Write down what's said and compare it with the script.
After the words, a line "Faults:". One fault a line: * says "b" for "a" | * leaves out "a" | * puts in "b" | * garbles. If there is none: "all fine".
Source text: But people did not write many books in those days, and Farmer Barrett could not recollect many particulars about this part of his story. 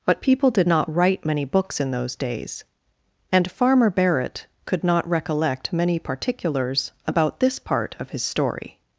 But people did not write many books in those days, and Farmer Barrett could not recollect many particulars about this part of his story.
Faults:
all fine